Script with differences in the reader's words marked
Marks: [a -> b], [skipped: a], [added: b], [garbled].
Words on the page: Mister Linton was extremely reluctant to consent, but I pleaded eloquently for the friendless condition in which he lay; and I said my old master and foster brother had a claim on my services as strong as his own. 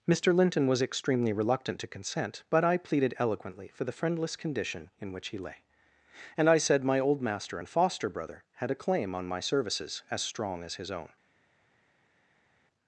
Mister Linton was extremely reluctant to consent, but I pleaded eloquently for the friendless condition in which he lay; and I said my old master and foster brother had a claim on my services as strong as his own.